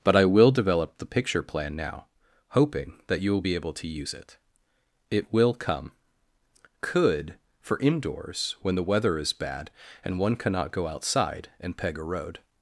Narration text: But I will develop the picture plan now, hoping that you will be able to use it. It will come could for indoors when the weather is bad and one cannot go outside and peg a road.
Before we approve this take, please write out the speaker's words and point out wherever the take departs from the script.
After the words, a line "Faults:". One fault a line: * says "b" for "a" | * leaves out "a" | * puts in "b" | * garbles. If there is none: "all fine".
But I will develop the picture plan now, hoping that you will be able to use it. It will come could for indoors when the weather is bad and one cannot go outside and peg a road.
Faults:
all fine